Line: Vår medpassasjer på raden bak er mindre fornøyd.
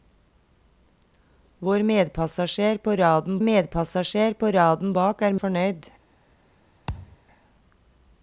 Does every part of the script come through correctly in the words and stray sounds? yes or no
no